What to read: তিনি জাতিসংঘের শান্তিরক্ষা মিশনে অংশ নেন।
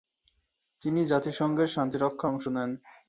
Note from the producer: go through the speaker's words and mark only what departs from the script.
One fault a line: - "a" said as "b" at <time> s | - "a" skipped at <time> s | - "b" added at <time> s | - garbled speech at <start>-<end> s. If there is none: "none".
- "মিশনে" skipped at 2.3 s